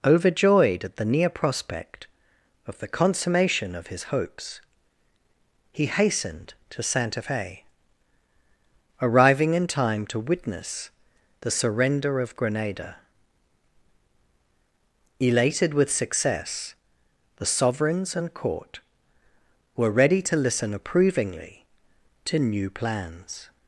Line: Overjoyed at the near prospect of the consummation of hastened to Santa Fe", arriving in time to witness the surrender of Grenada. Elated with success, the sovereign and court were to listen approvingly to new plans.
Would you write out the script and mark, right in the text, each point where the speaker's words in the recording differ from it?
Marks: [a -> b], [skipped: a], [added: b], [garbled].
Overjoyed at the near prospect of the consummation of [added: his hopes he] hastened to Santa Fe", arriving in time to witness the surrender of Grenada. Elated with success, the [sovereign -> sovereigns] and court were [added: ready] to listen approvingly to new plans.